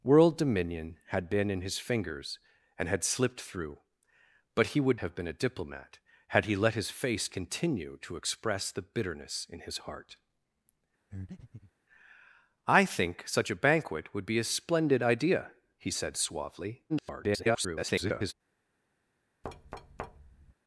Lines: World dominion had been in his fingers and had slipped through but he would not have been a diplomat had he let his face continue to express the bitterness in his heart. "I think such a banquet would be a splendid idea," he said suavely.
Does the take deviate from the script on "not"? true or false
true